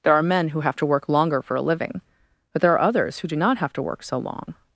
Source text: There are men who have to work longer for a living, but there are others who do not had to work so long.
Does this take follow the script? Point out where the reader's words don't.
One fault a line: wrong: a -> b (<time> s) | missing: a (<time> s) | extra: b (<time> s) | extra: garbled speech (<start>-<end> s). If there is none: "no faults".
wrong: had -> have (3.6 s)